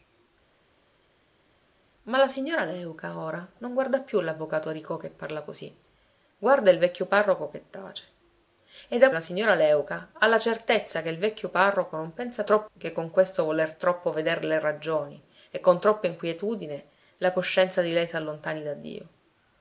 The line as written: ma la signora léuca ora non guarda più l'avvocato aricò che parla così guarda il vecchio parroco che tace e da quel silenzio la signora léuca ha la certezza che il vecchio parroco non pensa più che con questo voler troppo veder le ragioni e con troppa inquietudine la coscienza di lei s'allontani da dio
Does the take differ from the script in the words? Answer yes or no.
yes